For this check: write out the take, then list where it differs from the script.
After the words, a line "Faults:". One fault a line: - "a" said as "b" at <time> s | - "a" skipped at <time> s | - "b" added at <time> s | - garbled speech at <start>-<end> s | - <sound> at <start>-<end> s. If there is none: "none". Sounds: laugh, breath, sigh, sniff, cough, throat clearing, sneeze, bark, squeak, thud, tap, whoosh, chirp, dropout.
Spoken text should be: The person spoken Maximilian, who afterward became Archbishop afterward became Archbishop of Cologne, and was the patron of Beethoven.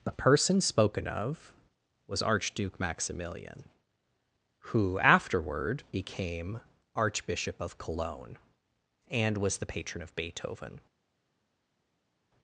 The person spoken of was Archduke Maximilian, who afterward became Archbishop of Cologne, and was the patron of Beethoven.
Faults:
- "Maximilian who afterward became Archbishop" said as "of was Archduke Maximilian who" at 1.1 s